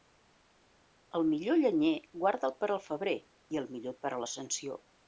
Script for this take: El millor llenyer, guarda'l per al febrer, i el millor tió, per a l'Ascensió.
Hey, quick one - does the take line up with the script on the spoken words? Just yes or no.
no